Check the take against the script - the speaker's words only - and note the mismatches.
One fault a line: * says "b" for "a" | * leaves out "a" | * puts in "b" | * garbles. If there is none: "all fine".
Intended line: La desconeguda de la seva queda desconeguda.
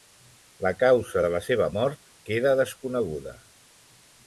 * says "causa" for "desconeguda"
* puts in "mort"